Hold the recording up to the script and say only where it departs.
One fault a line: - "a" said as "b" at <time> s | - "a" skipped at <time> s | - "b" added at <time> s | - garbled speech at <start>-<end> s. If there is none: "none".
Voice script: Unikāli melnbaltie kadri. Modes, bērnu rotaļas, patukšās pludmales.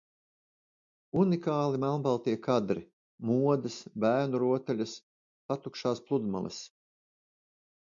none